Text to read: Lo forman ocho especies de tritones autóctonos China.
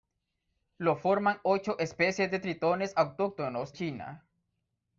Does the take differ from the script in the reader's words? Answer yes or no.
no